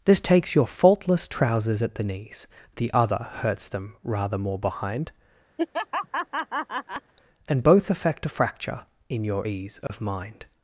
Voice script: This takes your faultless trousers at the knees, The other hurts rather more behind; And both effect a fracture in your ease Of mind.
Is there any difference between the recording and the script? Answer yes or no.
yes